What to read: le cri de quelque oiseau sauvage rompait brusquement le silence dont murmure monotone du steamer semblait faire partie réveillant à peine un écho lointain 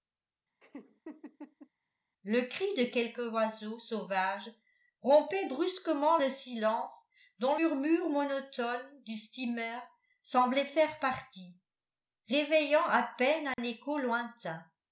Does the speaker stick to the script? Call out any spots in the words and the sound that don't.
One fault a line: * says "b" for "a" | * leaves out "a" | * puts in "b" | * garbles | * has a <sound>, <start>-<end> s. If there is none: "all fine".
* has a laugh, 0.6-1.7 s
* has a dropout, 13.5-13.6 s